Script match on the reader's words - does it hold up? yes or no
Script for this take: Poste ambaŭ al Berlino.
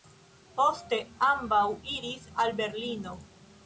no